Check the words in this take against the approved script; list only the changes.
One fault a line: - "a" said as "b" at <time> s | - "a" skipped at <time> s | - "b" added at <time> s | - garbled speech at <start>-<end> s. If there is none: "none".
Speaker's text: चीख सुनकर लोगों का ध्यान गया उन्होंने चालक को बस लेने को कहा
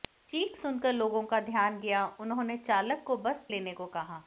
none